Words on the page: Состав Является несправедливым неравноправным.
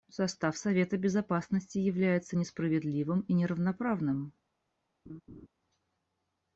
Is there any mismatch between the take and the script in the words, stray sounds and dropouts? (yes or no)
yes